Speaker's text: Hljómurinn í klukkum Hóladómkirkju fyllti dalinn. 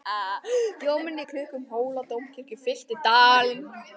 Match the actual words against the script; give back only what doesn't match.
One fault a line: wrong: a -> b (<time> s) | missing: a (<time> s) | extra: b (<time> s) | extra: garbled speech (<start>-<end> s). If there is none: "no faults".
no faults